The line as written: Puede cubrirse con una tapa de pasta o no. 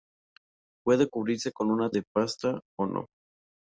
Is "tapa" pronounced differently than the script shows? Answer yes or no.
yes